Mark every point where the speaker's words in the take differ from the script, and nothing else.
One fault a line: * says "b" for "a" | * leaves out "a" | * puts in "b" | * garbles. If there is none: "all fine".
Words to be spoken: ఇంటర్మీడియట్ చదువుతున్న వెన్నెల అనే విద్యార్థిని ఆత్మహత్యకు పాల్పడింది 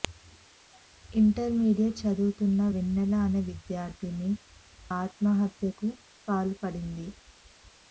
all fine